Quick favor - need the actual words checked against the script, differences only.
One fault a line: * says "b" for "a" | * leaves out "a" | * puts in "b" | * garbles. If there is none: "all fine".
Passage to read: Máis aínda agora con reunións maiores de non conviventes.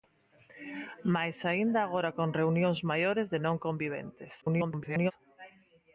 * garbles